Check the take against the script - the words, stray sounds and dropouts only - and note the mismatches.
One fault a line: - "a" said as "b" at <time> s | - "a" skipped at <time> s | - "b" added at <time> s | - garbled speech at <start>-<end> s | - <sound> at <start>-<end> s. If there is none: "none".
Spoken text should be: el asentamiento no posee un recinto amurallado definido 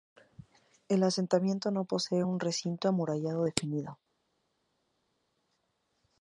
none